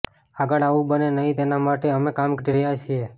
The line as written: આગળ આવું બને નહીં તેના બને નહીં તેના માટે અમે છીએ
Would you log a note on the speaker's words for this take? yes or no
yes